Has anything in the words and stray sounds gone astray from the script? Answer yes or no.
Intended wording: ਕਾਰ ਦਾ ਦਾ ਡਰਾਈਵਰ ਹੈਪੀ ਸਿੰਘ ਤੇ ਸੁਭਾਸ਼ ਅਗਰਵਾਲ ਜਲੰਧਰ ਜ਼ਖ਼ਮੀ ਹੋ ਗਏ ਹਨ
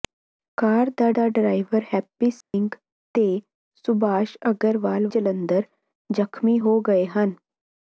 yes